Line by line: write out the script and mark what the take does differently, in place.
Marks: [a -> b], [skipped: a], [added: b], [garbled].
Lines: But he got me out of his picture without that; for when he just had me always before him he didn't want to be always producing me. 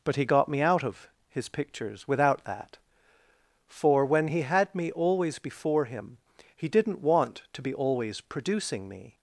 But he got me out of his [picture -> pictures] without that; for when he [skipped: just] had me always before him he didn't want to be always producing me.